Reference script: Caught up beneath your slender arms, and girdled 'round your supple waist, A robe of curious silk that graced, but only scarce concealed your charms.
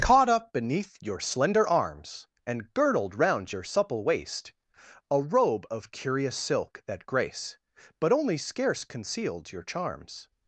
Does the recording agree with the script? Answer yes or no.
no